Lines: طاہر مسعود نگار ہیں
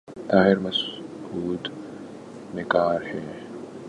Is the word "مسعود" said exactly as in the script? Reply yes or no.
yes